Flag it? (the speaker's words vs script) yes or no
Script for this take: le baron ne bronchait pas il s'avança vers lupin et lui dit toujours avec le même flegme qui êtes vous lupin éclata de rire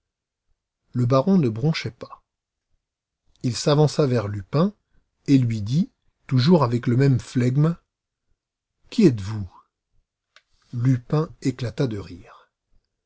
no